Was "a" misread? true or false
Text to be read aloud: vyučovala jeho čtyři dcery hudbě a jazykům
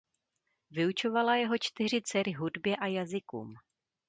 false